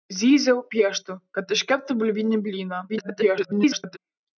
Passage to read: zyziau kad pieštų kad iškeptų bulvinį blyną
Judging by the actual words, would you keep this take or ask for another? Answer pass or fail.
fail